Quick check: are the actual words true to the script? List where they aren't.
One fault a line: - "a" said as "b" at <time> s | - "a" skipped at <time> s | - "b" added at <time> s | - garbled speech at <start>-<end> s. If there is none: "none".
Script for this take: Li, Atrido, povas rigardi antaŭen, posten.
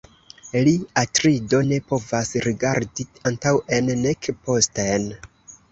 - "ne" added at 1.6 s
- "nek" added at 4.1 s